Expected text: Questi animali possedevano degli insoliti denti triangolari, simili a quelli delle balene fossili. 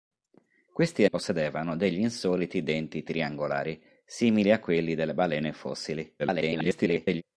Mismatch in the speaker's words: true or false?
true